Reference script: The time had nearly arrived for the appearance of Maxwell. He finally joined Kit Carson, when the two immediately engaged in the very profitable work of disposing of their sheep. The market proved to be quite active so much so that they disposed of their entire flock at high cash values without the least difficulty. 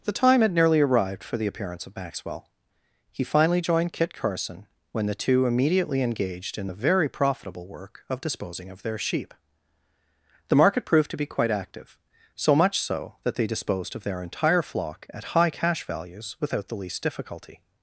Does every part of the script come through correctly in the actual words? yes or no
yes